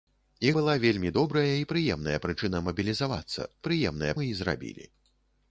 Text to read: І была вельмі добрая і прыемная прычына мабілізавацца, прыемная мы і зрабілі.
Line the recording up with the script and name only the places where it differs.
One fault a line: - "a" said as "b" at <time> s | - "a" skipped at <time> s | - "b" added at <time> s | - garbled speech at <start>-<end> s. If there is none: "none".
none